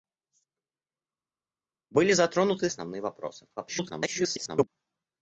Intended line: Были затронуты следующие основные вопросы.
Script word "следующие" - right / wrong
wrong